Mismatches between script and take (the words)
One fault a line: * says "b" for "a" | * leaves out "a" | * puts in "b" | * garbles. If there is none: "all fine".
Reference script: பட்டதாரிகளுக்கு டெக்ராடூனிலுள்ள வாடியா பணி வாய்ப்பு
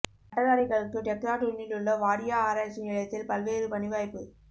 * puts in "ஆராய்ச்சி நிலையத்தில் பல்வேறு"